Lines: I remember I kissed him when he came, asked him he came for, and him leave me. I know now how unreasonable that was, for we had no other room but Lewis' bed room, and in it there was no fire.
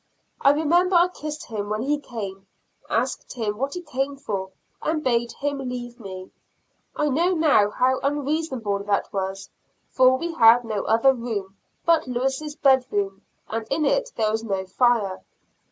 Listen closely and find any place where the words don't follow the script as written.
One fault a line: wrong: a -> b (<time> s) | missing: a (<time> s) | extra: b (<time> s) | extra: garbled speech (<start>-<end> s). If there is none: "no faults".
extra: what (3.6 s)
extra: bade (5.0 s)